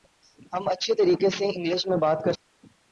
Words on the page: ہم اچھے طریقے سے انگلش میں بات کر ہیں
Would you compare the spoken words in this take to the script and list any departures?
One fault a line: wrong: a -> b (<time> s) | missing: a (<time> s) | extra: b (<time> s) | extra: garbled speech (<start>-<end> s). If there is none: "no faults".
no faults